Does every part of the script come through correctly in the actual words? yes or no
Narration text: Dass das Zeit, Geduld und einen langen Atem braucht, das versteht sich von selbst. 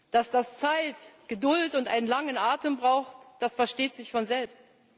yes